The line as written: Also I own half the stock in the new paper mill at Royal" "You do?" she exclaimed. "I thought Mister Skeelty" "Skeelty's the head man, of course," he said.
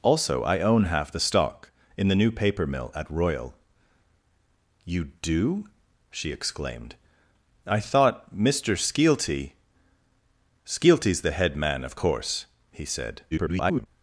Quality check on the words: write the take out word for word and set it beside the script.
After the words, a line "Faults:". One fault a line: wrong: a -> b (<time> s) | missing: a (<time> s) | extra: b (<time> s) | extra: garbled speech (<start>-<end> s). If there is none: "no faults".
Also I own half the stock in the new paper mill at Royal" "You do?" she exclaimed. "I thought Mister Skeelty" "Skeelty's the head man, of course," he said. [garbled]
Faults:
extra: garbled speech (13.3-13.9 s)